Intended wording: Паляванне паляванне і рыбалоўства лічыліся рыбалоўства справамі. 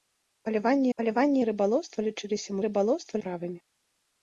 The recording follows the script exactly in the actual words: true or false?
true